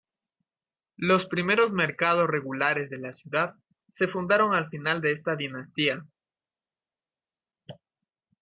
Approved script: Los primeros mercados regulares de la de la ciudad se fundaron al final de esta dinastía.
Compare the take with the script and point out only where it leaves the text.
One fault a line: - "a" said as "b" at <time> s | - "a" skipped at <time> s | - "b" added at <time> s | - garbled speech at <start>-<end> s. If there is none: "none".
- "de la" skipped at 3.1 s